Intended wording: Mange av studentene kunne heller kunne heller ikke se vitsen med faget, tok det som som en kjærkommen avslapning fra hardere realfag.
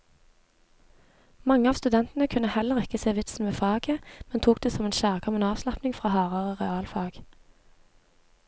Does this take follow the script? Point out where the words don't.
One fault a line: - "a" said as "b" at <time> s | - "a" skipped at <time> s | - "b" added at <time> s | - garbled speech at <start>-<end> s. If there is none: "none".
- "kunne heller" skipped at 2.8 s
- "men" added at 4.3 s
- "som" skipped at 4.9 s